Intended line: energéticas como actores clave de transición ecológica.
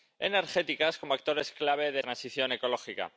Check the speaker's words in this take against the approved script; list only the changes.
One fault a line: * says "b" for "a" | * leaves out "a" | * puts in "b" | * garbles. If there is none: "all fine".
all fine